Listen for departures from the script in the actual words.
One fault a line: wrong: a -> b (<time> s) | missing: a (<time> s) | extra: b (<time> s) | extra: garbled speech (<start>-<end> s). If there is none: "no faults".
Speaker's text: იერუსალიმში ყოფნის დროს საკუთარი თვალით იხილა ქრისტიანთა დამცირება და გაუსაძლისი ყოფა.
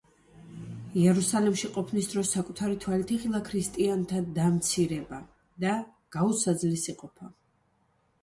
no faults